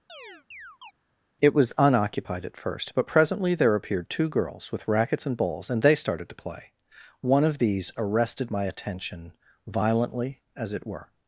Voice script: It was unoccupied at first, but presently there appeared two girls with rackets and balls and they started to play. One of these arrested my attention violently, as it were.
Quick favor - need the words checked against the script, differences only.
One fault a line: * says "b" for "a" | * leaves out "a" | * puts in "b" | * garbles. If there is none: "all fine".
all fine